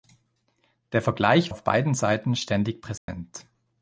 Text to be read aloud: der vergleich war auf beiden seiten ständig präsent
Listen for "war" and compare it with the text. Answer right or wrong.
wrong